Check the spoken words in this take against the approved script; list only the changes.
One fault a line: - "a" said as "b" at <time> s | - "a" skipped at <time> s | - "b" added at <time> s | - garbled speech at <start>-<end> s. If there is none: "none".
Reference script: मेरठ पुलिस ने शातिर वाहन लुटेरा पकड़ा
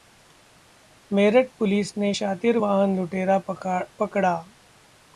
none